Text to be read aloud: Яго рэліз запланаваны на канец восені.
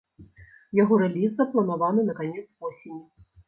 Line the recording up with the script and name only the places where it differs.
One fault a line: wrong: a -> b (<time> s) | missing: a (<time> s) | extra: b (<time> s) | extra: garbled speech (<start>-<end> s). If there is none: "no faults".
no faults